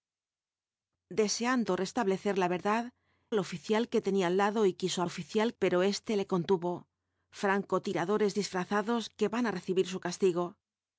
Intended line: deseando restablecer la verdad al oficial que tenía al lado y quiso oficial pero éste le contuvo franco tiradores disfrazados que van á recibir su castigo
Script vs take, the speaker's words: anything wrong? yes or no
no